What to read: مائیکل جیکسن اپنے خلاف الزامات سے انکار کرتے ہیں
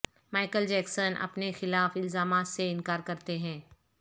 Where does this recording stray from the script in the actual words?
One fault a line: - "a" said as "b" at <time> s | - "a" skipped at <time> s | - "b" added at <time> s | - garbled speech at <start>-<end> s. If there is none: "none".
none